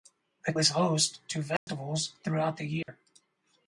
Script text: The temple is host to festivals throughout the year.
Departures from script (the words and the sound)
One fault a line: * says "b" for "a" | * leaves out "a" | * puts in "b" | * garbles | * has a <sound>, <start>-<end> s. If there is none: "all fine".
* leaves out "temple"
* has a dropout, 1.6-1.7 s
* has a dropout, 2.8-2.9 s